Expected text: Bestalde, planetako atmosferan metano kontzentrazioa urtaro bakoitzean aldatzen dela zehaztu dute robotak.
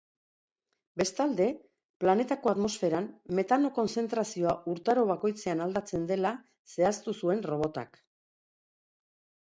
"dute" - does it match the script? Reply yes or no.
no